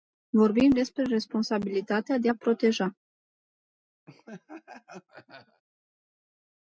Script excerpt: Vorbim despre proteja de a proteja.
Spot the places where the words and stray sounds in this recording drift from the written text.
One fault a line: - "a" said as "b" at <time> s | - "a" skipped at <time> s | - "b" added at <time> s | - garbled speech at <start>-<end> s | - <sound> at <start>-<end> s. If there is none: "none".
- "proteja" said as "responsabilitatea" at 1.0 s
- laugh at 4.1-5.6 s